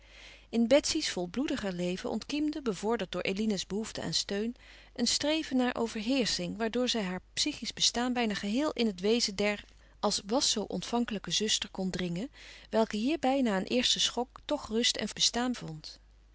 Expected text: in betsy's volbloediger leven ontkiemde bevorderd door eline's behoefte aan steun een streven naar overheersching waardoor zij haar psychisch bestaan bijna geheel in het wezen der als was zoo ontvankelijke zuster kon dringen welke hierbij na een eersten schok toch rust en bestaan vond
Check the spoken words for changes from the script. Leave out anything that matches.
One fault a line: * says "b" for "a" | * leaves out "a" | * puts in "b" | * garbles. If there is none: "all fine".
all fine